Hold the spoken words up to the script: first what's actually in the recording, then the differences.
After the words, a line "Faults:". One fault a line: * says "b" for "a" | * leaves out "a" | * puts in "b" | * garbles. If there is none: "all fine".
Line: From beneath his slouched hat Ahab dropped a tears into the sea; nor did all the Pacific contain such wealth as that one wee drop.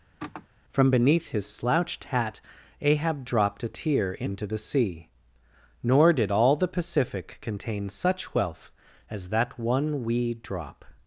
From beneath his slouched hat Ahab dropped a tear into the sea; nor did all the Pacific contain such wealth as that one wee drop.
Faults:
* says "tear" for "tears"